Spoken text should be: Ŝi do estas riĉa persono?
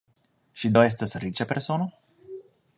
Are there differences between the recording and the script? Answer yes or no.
no